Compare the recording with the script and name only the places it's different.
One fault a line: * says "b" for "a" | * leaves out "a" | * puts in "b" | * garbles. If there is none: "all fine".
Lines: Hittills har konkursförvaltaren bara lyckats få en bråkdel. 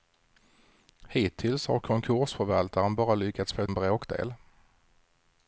all fine